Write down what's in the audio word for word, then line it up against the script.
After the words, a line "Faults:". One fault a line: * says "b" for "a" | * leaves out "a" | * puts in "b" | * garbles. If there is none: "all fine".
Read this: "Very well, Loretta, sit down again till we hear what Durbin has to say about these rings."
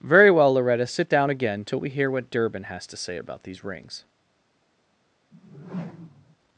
"Very well, Loretta, sit down again till we hear what Durbin has to say about these rings."
Faults:
all fine